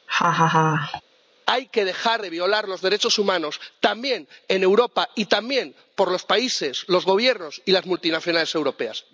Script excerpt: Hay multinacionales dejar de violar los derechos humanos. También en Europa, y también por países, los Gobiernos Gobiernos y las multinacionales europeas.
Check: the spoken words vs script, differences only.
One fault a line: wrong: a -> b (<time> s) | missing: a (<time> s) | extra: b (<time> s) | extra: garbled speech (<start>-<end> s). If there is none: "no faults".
wrong: multinacionales -> que (1.7 s)
extra: los (6.1 s)
missing: Gobiernos (7.6 s)